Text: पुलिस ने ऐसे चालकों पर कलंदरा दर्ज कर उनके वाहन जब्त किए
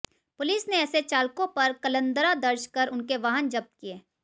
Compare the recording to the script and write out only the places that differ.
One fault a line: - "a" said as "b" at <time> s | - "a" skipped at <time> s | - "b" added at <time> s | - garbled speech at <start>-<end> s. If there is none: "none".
none